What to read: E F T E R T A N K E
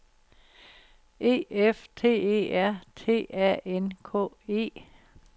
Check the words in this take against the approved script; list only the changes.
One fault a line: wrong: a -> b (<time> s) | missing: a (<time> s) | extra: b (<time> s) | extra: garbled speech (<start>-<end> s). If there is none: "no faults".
no faults